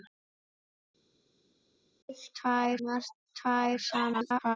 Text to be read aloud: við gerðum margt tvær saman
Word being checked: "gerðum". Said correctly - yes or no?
no